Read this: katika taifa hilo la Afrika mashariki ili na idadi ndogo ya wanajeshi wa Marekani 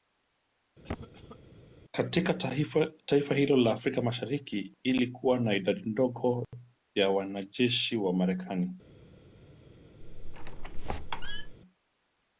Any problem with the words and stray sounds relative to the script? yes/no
yes